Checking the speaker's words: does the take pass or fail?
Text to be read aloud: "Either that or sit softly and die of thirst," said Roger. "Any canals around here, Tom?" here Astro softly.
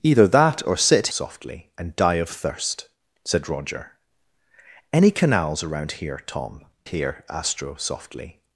pass